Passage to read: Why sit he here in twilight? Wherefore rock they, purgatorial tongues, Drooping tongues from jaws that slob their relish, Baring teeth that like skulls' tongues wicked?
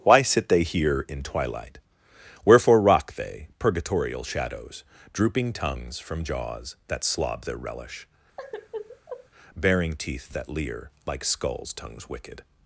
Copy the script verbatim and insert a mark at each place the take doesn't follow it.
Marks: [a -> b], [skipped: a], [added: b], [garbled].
Why sit [he -> they] here in twilight? Wherefore rock they, purgatorial [tongues, -> shadows] Drooping tongues from jaws that slob their relish, Baring teeth that [added: leer] like skulls' tongues wicked?